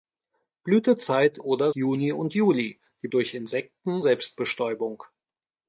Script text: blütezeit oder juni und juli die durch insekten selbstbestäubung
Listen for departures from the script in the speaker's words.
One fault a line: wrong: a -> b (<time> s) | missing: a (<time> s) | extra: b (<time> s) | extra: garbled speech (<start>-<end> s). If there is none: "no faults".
no faults